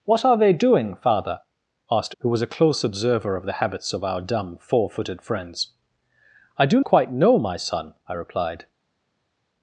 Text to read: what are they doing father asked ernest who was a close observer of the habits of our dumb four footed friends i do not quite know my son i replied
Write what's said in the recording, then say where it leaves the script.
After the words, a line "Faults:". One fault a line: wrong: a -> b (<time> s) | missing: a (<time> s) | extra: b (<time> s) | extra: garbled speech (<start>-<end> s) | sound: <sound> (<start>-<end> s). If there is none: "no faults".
what are they doing father asked who was a close observer of the habits of our dumb four footed friends i do quite know my son i replied
Faults:
missing: ernest (2.1 s)
missing: not (6.8 s)